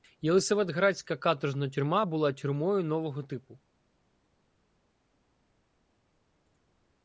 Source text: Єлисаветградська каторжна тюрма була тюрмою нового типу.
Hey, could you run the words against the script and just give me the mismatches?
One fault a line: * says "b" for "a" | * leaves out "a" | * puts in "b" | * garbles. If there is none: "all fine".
all fine